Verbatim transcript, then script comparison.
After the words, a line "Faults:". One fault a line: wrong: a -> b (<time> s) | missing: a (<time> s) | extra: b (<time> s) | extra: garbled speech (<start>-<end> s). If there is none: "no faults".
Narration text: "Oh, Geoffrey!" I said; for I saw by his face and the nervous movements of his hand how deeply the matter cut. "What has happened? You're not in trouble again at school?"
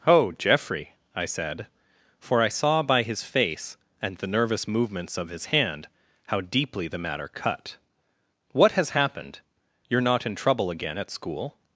"Oh, Geoffrey!" I said; for I saw by his face and the nervous movements of his hand how deeply the matter cut. "What has happened? You're not in trouble again at school?"
Faults:
no faults